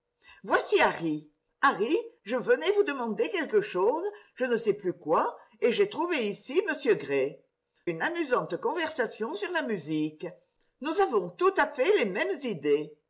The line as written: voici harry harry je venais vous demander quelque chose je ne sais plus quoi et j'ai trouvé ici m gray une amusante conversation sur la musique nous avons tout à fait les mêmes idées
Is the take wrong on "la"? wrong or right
right